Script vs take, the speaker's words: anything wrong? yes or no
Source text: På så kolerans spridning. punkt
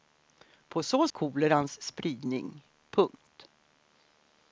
no